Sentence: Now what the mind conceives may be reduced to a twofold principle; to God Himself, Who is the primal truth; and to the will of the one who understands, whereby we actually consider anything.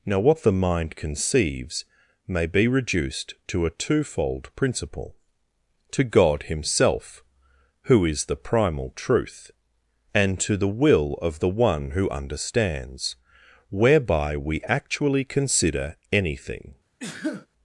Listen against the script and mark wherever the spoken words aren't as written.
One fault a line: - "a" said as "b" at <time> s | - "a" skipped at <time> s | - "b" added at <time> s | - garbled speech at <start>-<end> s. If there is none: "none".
none